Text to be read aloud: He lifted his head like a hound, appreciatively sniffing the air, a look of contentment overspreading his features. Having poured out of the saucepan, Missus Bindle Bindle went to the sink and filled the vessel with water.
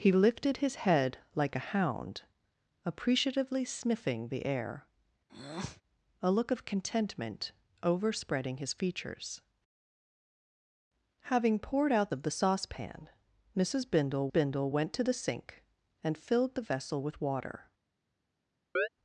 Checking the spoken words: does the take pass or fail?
pass